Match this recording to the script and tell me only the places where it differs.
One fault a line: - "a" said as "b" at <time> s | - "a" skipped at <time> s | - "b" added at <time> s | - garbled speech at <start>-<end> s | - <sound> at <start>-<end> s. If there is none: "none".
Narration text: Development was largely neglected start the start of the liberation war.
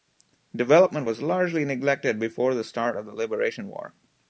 - "start" said as "before" at 2.2 s